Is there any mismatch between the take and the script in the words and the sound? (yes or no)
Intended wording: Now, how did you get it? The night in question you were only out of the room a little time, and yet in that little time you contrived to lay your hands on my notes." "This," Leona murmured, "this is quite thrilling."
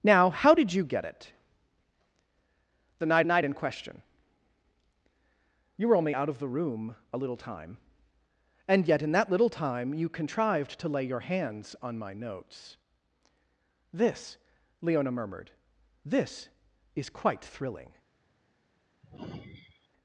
yes